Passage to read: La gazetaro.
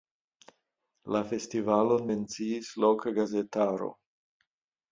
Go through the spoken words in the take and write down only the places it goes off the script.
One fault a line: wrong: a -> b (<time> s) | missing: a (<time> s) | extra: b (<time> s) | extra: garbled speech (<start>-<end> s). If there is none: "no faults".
extra: festivalon menciis loka (1.3 s)